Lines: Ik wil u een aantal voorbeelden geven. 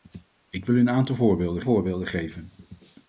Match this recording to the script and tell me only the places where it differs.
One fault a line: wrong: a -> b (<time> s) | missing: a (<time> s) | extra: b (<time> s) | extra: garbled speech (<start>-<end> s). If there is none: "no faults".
extra: voorbeelden (1.6 s)